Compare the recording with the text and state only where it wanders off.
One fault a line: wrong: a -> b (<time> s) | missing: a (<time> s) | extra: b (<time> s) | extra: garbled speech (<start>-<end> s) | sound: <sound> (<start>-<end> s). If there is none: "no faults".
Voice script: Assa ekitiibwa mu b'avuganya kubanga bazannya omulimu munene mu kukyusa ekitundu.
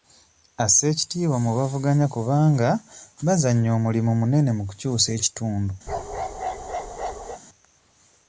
sound: bark (5.9-7.4 s)